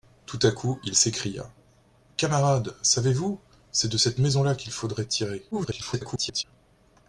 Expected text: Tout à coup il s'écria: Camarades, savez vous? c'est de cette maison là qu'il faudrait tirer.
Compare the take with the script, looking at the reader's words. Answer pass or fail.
fail